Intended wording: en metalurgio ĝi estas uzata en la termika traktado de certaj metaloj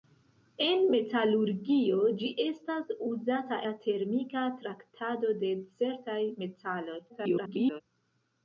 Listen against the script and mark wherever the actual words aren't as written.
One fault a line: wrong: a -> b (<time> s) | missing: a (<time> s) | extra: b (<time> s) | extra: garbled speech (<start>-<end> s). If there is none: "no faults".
missing: en (3.6 s)
extra: garbled speech (7.1-7.8 s)